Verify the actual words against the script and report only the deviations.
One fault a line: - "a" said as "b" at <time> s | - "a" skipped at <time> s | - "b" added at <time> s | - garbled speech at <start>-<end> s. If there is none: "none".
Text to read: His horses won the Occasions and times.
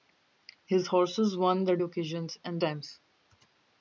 none